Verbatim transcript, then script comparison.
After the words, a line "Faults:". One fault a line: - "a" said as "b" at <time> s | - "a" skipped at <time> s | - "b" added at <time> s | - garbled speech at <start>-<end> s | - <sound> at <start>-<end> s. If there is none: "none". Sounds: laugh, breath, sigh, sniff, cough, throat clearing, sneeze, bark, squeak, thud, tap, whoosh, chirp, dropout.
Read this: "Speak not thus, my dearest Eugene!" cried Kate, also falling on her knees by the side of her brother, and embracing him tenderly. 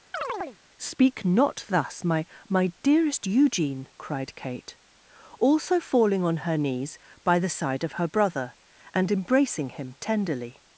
"Speak not thus, my my dearest Eugene!" cried Kate, also falling on her knees by the side of her brother, and embracing him tenderly.
Faults:
- chirp at 0.1-0.6 s
- "my" added at 2.5 s